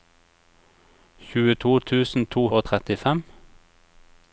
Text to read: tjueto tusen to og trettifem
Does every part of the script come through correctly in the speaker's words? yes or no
yes